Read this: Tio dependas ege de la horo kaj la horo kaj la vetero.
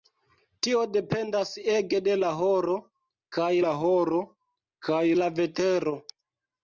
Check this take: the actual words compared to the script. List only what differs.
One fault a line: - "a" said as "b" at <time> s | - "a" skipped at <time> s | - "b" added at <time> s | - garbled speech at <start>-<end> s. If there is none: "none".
none